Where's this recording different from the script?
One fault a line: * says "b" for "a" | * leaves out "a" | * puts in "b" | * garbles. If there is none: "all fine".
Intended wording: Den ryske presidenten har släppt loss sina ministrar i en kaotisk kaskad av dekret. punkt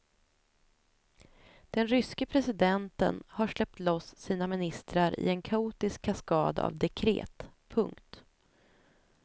all fine